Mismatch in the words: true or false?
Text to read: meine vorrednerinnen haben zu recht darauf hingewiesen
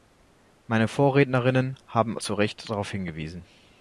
false